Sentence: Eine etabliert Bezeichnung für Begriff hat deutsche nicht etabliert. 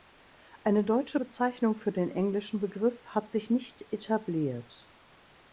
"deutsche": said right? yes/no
no